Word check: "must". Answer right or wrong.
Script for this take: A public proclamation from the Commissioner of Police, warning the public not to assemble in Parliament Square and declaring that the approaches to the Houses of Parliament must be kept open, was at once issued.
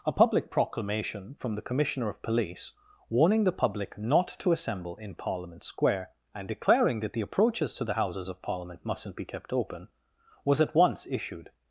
wrong